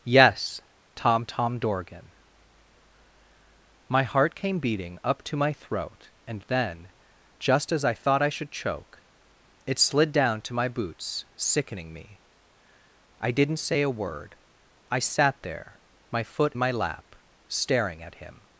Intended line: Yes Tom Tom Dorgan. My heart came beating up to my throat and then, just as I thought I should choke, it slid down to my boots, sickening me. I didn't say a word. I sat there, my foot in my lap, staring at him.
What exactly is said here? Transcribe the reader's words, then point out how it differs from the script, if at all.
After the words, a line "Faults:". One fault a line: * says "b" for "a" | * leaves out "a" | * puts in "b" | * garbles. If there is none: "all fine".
Yes Tom Tom Dorgan. My heart came beating up to my throat and then, just as I thought I should choke, it slid down to my boots, sickening me. I didn't say a word. I sat there, my foot my lap, staring at him.
Faults:
* leaves out "in"